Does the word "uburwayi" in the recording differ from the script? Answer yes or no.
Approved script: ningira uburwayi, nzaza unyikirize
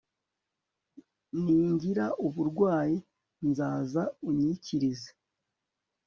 no